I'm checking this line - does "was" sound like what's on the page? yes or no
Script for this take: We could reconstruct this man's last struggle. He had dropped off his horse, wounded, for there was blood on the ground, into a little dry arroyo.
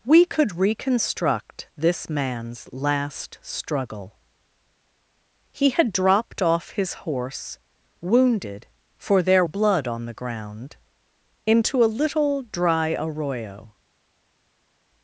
no